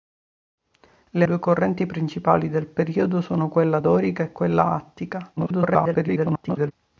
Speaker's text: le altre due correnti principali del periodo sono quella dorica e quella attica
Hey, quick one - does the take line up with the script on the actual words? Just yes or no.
no